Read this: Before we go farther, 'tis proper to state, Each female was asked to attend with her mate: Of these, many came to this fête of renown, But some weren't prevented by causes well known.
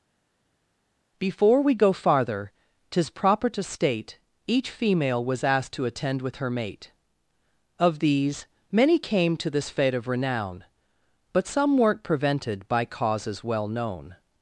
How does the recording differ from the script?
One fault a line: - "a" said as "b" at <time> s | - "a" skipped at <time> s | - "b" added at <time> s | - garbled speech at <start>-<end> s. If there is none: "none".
none